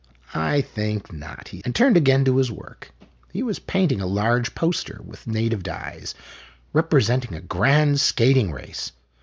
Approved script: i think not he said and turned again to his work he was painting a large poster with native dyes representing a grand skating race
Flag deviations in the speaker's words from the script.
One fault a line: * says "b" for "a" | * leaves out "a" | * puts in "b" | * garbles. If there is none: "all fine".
* leaves out "said"